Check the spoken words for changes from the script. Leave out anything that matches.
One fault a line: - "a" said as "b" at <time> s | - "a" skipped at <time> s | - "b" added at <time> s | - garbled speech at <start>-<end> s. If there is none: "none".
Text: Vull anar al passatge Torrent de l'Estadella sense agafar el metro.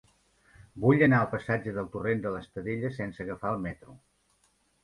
- "del" added at 1.8 s